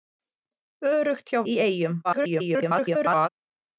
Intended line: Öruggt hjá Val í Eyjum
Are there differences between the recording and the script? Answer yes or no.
yes